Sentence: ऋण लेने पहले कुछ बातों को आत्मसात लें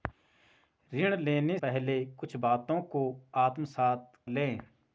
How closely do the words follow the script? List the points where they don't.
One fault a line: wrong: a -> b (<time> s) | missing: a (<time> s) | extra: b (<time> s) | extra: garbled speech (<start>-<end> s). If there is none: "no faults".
no faults